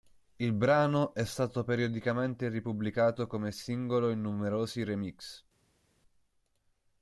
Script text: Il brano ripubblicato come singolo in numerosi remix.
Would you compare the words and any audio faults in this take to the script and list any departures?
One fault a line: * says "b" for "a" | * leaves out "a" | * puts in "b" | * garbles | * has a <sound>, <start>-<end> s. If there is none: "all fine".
* puts in "è stato periodicamente"